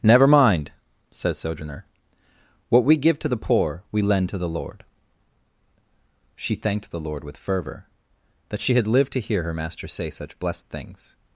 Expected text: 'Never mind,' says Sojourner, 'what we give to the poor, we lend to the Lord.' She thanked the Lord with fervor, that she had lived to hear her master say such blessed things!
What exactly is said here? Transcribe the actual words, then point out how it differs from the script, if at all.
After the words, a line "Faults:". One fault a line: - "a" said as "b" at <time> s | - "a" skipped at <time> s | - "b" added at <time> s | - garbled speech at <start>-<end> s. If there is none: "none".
'Never mind,' says Sojourner, 'what we give to the poor, we lend to the Lord.' She thanked the Lord with fervor, that she had lived to hear her master say such blessed things!
Faults:
none